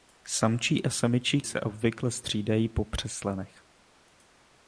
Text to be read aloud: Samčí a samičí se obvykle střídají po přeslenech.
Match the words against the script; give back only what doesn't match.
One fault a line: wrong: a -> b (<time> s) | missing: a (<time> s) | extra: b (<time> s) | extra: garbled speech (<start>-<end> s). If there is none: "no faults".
no faults